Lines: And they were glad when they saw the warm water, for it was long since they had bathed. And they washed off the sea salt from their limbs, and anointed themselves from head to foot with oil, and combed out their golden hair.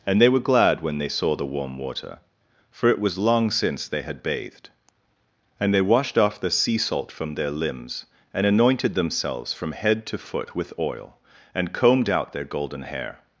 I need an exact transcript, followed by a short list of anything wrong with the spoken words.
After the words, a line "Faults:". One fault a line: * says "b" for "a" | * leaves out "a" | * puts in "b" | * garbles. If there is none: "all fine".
And they were glad when they saw the warm water, for it was long since they had bathed. And they washed off the sea salt from their limbs, and anointed themselves from head to foot with oil, and combed out their golden hair.
Faults:
all fine